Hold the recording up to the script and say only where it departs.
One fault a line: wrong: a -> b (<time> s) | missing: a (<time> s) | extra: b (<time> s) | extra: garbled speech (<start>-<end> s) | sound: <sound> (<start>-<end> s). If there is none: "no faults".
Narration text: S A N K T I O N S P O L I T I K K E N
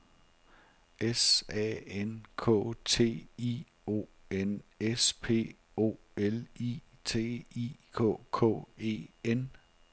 no faults